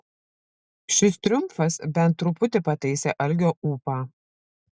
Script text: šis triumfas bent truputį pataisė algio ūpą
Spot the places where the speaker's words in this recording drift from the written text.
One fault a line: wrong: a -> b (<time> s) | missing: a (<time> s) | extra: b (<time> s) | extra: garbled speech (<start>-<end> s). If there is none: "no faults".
no faults